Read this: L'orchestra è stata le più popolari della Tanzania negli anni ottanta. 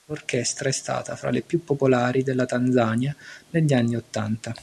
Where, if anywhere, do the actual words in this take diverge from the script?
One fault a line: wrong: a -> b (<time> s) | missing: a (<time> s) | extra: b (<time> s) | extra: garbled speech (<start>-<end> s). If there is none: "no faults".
extra: fra (1.1 s)